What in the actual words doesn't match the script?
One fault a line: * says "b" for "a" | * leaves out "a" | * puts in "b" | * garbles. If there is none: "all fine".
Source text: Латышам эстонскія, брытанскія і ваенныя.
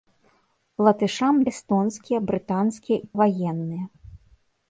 all fine